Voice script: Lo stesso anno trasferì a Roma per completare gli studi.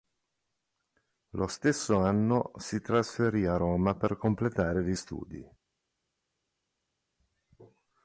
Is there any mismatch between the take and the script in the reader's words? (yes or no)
yes